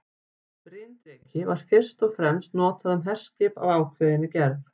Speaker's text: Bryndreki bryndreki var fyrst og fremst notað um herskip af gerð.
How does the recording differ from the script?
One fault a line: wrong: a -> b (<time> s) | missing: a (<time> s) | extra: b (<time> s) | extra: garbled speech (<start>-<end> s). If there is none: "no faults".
missing: bryndreki (1.4 s)
extra: ákveðinni (3.8 s)